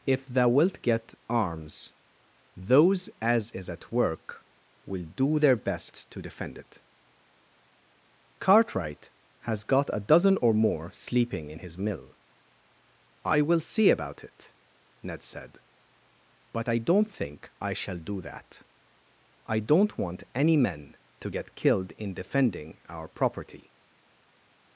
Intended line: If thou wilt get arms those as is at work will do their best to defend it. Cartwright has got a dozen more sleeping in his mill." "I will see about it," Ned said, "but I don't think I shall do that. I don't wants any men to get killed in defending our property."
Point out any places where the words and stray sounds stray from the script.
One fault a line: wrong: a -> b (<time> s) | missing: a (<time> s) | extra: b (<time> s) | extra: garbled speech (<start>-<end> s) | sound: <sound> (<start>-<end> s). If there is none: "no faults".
extra: or (10.4 s)
wrong: wants -> want (20.0 s)